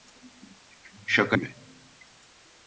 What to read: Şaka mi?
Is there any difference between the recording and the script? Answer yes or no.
no